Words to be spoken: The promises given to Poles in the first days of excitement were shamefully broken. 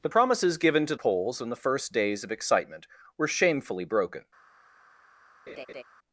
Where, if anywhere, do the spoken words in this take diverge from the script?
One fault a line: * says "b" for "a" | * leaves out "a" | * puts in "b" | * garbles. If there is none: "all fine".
all fine